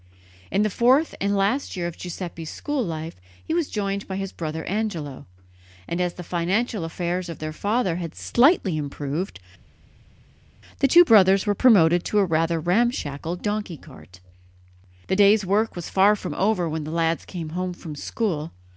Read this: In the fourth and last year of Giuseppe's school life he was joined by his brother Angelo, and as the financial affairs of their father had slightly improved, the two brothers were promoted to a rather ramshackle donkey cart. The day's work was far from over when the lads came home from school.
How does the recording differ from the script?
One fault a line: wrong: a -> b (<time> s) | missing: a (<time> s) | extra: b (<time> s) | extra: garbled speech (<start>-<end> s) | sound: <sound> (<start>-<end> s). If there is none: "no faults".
no faults